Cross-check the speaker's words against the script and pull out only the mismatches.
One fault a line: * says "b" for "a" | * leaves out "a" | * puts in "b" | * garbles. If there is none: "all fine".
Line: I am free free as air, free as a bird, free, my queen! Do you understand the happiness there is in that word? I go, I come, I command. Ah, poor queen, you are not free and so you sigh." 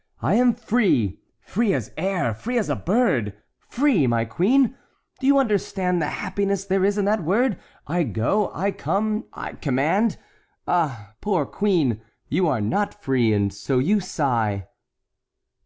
all fine